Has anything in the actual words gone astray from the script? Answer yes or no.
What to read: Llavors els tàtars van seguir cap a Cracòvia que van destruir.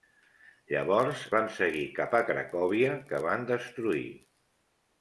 yes